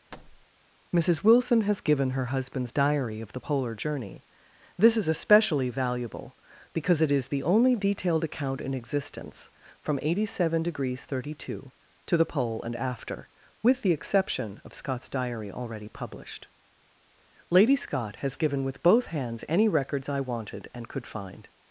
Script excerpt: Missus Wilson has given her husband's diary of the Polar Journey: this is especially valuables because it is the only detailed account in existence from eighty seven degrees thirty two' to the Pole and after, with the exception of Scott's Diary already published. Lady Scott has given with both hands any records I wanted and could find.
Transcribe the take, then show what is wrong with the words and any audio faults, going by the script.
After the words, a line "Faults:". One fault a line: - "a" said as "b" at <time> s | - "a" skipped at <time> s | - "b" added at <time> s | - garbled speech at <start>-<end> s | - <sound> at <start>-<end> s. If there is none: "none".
Missus Wilson has given her husband's diary of the Polar Journey: this is especially valuable because it is the only detailed account in existence from eighty seven degrees thirty two' to the Pole and after, with the exception of Scott's Diary already published. Lady Scott has given with both hands any records I wanted and could find.
Faults:
- thud at 0.1-0.5 s
- "valuables" said as "valuable" at 5.7 s